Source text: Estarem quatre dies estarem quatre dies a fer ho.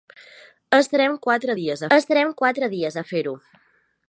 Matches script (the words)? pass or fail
pass